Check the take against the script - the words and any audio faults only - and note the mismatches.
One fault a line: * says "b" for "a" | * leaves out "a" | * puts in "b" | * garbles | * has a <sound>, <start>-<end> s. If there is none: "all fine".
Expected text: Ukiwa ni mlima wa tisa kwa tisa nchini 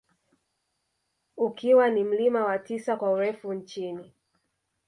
* says "urefu" for "tisa"